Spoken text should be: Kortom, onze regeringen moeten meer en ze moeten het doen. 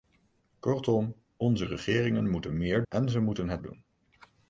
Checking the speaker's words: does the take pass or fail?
pass